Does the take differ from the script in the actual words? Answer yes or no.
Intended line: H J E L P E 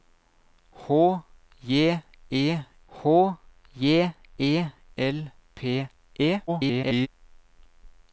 yes